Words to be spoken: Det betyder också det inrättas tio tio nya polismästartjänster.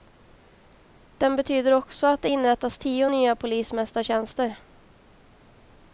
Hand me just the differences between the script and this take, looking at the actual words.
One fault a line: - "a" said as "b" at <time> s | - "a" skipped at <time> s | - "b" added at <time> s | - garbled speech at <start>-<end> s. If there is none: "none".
- "Det" said as "Den" at 1.2 s
- "att" added at 2.1 s
- "tio" skipped at 3.1 s